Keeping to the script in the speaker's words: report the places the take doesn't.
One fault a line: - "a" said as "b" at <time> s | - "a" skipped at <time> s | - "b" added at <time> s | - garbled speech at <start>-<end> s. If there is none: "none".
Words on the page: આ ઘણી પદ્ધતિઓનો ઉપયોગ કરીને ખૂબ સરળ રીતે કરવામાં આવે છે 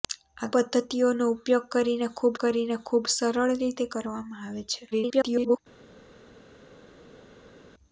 - "ઘણી" skipped at 0.5 s
- "કરીને ખૂબ" added at 2.4 s
- garbled speech at 4.9-5.6 s